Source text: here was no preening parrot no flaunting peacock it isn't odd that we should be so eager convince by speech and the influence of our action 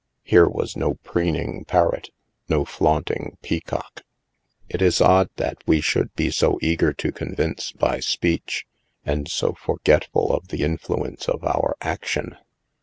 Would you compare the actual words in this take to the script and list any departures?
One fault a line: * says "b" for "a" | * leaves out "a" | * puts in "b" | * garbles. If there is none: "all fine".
* says "is" for "isn't"
* puts in "to"
* puts in "so forgetful of"